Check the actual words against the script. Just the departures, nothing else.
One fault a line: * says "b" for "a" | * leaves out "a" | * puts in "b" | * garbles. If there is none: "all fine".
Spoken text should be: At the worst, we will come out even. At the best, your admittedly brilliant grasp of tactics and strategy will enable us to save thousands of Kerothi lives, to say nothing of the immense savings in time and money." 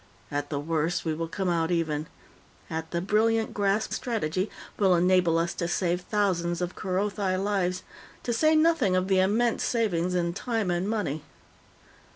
* leaves out "best your admittedly"
* leaves out "of tactics and"